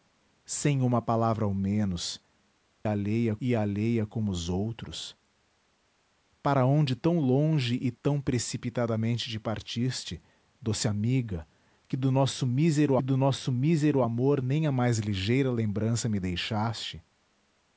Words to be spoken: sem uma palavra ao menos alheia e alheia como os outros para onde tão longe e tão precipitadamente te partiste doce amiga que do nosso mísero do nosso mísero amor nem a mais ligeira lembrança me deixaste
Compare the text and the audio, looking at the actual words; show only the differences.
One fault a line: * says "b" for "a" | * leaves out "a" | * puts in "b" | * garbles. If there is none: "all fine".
all fine